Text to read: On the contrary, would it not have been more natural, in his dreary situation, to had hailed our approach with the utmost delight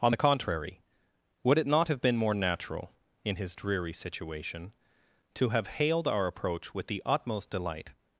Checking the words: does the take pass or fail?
fail